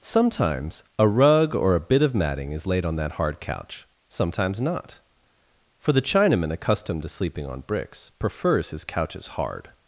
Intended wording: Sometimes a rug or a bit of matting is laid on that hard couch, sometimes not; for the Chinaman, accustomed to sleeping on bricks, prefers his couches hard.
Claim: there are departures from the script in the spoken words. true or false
false